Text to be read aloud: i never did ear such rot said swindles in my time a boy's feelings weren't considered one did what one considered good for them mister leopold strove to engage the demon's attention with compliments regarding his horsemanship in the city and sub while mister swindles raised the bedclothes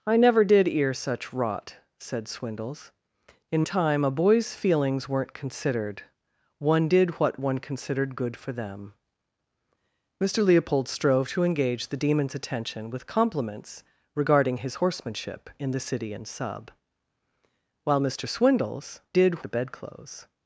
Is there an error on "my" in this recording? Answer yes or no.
yes